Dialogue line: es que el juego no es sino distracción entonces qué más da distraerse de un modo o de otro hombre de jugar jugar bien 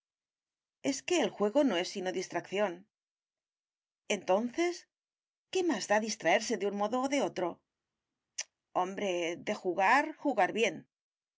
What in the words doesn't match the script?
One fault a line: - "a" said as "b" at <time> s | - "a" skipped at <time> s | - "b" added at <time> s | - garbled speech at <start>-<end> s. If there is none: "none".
none